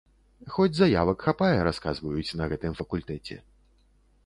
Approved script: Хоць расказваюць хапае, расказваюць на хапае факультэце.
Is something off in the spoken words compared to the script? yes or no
yes